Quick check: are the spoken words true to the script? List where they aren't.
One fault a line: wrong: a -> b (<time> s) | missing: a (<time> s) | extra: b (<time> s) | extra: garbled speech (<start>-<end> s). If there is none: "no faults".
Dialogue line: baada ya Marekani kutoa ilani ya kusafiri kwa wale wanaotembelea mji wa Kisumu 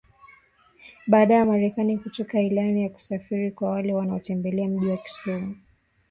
no faults